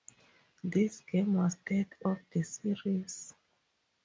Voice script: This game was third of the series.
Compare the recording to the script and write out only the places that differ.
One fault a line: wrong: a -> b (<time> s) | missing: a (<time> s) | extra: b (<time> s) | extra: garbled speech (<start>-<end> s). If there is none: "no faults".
no faults